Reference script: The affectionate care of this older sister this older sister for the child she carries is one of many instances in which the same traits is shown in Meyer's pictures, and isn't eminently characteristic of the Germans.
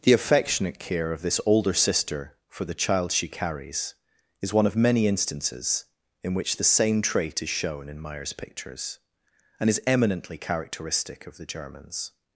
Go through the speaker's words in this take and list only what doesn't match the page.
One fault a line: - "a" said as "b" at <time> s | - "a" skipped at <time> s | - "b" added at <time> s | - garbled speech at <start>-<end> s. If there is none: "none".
- "this older sister" skipped at 2.4 s
- "traits" said as "trait" at 7.0 s
- "isn't" said as "is" at 9.7 s